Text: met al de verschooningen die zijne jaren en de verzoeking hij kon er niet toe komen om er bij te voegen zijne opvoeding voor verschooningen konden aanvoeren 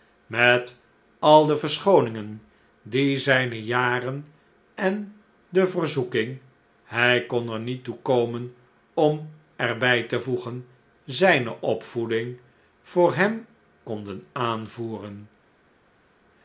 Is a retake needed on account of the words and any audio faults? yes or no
yes